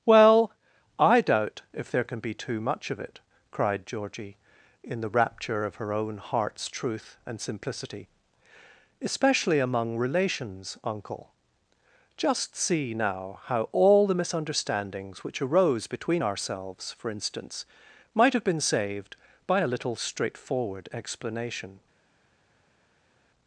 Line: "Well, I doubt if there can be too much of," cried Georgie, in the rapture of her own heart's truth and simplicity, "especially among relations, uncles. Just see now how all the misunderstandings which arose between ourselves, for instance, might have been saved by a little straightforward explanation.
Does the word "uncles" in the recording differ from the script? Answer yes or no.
yes